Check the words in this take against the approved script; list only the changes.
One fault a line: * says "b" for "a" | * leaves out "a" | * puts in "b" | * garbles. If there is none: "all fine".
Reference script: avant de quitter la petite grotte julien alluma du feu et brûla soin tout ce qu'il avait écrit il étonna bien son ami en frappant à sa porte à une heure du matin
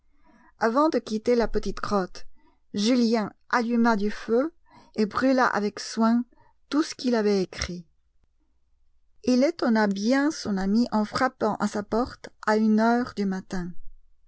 * puts in "avec"